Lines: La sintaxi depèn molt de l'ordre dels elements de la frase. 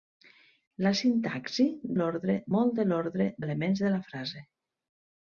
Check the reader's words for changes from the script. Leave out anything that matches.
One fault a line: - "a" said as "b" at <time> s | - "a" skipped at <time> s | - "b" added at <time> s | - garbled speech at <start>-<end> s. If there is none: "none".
- "depèn" said as "l'ordre" at 2.0 s
- "dels" skipped at 3.3 s